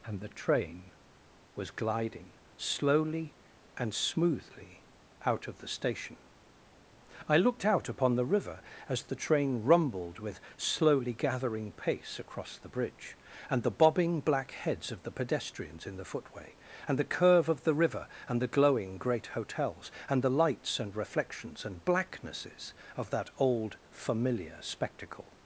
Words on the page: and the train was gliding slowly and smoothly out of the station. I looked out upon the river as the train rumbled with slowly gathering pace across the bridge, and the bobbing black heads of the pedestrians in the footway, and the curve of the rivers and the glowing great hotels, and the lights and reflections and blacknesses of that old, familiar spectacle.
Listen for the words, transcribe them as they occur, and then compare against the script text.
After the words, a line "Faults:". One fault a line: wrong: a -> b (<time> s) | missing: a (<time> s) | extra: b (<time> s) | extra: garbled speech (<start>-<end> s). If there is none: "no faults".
and the train was gliding slowly and smoothly out of the station. I looked out upon the river as the train rumbled with slowly gathering pace across the bridge, and the bobbing black heads of the pedestrians in the footway, and the curve of the river and the glowing great hotels, and the lights and reflections and blacknesses of that old, familiar spectacle.
Faults:
wrong: rivers -> river (17.7 s)